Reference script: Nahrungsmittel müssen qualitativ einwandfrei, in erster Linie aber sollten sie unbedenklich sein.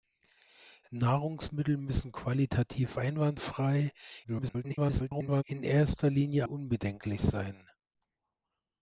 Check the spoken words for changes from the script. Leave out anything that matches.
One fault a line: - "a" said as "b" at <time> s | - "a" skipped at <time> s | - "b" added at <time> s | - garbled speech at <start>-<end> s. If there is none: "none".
- garbled speech at 4.2-5.4 s
- "aber sollten sie" skipped at 6.5 s